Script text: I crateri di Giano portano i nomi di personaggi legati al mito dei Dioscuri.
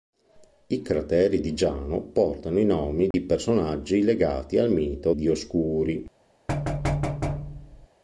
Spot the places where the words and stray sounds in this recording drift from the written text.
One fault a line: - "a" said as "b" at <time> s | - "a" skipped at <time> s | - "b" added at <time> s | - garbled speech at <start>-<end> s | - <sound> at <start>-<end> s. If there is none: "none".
- dropout at 3.1-3.1 s
- "dei" skipped at 5.1 s
- thud at 6.5-7.9 s